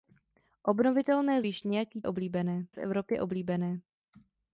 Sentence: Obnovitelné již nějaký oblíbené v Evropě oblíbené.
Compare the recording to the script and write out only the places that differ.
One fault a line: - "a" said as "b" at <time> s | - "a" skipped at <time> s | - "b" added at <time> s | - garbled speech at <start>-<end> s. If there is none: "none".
none